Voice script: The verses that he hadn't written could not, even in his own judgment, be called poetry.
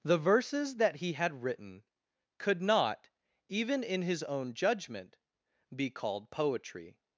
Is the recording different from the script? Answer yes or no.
yes